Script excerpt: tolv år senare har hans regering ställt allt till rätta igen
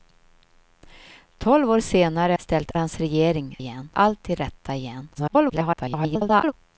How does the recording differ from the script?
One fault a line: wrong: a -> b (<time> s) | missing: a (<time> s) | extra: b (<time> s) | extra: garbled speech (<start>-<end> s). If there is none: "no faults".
wrong: har -> ställt (2.4 s)
wrong: ställt -> igen (3.6 s)
extra: garbled speech (5.1-6.5 s)